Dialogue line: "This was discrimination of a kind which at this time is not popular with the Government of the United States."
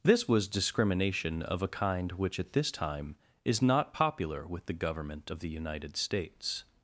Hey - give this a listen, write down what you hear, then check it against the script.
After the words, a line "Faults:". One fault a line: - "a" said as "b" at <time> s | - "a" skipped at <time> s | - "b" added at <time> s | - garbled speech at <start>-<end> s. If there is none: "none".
"This was discrimination of a kind which at this time is not popular with the Government of the United States."
Faults:
none